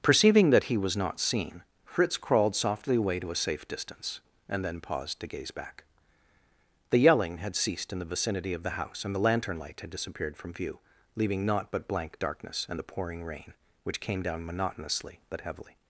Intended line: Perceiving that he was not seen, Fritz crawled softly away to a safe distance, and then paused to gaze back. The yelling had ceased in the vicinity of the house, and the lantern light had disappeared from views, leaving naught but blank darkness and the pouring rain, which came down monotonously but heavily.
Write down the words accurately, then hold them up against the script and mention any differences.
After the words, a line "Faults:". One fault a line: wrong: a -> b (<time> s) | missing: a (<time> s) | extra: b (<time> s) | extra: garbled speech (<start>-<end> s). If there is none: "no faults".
Perceiving that he was not seen, Fritz crawled softly away to a safe distance, and then paused to gaze back. The yelling had ceased in the vicinity of the house, and the lantern light had disappeared from view, leaving naught but blank darkness and the pouring rain, which came down monotonously but heavily.
Faults:
wrong: views -> view (10.5 s)